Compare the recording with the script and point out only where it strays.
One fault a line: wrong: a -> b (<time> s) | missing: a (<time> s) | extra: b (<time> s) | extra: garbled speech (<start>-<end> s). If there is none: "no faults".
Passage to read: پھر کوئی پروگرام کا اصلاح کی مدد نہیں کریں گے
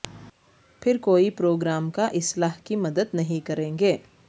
no faults